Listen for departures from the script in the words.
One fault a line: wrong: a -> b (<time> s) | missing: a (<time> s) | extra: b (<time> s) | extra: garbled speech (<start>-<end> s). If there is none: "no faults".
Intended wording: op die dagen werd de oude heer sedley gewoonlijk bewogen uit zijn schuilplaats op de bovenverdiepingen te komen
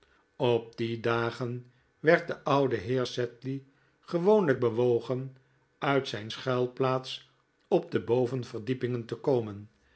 no faults